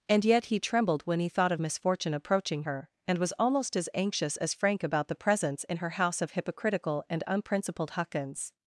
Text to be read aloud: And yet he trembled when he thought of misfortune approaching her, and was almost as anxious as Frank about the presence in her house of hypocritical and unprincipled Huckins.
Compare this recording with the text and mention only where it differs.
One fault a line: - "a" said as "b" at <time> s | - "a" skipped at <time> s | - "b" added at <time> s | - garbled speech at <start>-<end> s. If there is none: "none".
none